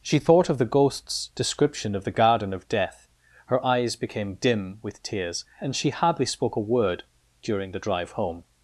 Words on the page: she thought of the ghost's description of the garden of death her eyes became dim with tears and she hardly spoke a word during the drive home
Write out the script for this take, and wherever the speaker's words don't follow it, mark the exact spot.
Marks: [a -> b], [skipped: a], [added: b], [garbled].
she thought of the ghost's description of the garden of death her eyes became dim with tears and she hardly spoke a word during the drive home